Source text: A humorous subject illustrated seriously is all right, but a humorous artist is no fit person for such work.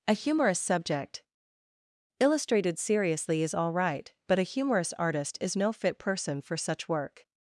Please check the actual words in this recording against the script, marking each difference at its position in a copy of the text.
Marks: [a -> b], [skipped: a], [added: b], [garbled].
A humorous subject illustrated seriously is all right, but a humorous artist is no fit person for such work.